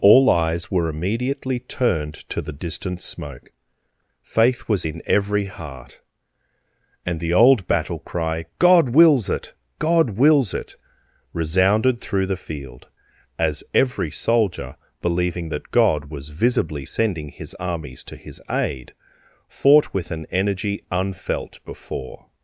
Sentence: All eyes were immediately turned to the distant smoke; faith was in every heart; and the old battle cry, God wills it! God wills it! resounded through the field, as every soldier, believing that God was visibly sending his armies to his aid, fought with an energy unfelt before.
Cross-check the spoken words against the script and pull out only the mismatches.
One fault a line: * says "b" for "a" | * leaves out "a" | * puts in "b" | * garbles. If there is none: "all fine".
all fine